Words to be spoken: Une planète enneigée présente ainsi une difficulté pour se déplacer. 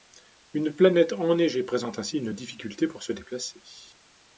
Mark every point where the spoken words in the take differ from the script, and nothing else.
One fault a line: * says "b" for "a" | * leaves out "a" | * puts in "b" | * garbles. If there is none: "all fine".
all fine